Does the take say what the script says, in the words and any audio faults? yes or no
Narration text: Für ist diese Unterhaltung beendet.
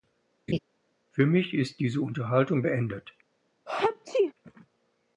no